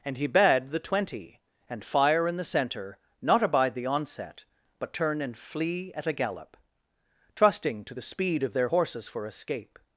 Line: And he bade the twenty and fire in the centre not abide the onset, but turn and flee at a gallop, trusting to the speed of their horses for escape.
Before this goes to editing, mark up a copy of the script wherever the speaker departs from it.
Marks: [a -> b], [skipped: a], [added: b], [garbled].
And he bade the twenty and fire in the centre not abide the onset, but turn and flee at a gallop, trusting to the speed of their horses for escape.